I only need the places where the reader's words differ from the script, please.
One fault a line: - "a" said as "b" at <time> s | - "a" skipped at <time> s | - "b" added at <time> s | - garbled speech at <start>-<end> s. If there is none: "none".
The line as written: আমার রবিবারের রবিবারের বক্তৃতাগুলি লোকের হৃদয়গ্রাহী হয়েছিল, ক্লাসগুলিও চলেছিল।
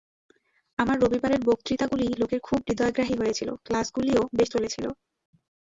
- "রবিবারের" skipped at 1.4 s
- "খুব" added at 2.4 s
- "বেশ" added at 4.3 s